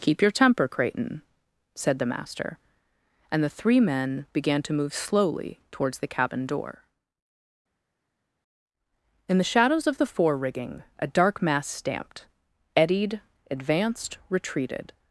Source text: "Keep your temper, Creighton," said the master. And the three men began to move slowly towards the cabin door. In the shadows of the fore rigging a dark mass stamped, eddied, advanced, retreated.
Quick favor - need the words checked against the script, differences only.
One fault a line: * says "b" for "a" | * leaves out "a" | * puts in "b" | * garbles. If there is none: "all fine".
all fine